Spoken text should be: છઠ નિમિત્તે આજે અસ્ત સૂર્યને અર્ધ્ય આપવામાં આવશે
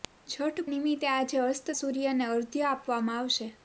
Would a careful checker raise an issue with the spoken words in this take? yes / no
no